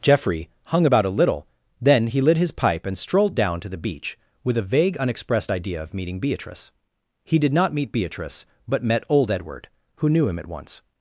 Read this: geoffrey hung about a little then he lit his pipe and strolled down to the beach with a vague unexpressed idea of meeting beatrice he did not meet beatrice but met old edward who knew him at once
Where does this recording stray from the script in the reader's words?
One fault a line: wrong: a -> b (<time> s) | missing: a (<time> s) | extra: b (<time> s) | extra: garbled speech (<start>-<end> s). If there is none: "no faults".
no faults